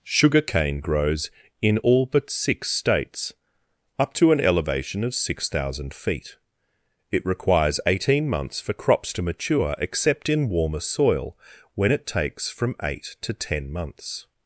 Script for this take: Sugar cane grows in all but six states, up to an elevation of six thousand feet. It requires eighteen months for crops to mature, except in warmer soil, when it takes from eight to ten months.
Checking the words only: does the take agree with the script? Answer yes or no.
yes